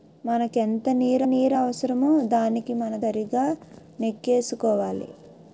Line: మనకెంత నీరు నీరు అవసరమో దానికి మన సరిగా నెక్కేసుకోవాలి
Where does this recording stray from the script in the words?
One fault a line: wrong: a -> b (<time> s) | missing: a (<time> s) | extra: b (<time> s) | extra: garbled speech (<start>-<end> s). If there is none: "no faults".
no faults